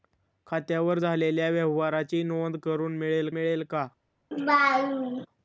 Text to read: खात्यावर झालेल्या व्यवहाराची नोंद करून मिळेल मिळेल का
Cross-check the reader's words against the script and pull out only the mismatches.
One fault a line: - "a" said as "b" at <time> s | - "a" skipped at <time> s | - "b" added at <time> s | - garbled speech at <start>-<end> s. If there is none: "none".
none